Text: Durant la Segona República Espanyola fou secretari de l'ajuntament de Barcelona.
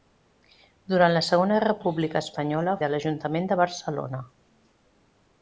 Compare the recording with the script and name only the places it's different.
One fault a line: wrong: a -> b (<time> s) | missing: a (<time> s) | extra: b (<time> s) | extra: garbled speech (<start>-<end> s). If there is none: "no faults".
missing: fou secretari (2.7 s)